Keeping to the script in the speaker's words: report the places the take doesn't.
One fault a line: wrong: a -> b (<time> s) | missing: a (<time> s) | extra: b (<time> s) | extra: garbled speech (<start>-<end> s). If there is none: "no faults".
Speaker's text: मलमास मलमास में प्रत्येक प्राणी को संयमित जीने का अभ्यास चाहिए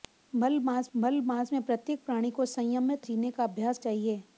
no faults